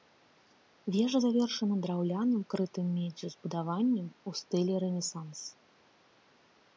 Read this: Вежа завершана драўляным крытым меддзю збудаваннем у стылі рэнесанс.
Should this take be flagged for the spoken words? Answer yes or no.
no